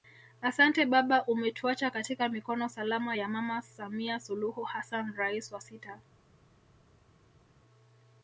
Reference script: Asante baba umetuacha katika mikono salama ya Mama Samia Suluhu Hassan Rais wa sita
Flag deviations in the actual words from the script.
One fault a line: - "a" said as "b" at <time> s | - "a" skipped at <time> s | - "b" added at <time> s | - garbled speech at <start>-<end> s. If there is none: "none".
none